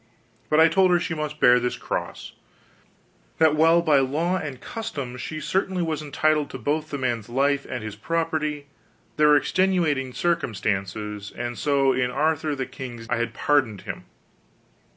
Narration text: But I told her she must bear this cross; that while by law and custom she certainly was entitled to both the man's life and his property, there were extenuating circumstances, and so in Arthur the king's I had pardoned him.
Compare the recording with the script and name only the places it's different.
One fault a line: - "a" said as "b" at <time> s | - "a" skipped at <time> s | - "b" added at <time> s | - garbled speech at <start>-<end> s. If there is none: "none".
none